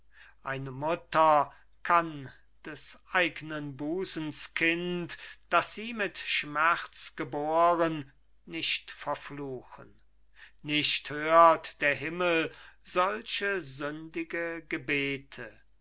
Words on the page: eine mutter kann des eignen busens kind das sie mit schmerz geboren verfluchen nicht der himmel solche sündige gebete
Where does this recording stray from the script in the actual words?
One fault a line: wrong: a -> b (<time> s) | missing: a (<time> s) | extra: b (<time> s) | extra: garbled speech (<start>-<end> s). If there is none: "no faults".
extra: nicht (8.5 s)
extra: hört (11.1 s)